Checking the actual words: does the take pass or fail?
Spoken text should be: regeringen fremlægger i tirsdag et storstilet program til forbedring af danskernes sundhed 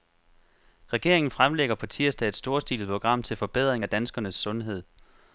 fail